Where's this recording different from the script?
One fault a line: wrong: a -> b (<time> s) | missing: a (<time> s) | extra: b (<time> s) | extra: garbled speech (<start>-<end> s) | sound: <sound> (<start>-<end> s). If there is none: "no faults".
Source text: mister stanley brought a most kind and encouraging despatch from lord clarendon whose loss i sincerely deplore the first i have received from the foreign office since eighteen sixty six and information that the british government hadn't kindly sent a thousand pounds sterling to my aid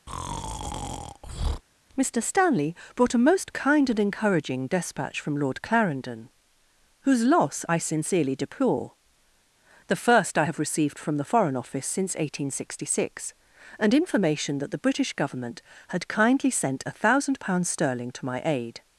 sound: breath (0.1-1.6 s)
wrong: hadn't -> had (15.9 s)